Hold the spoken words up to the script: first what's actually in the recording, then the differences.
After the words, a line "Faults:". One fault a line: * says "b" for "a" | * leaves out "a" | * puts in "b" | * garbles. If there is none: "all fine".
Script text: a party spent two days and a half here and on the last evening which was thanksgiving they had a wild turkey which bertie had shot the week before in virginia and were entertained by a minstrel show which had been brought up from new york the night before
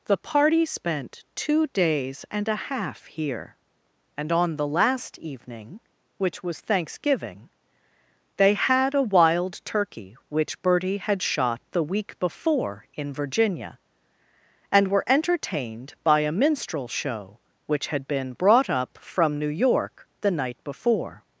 the party spent two days and a half here and on the last evening which was thanksgiving they had a wild turkey which bertie had shot the week before in virginia and were entertained by a minstrel show which had been brought up from new york the night before
Faults:
* says "the" for "a"